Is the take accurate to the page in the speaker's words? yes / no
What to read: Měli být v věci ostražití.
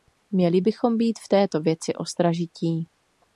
no